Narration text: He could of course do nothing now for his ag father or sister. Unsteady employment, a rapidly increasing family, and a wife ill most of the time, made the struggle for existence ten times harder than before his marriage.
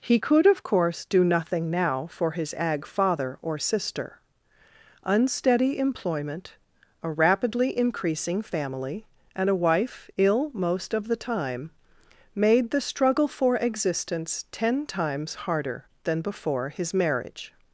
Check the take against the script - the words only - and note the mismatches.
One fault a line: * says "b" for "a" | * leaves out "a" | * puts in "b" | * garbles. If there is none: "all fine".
all fine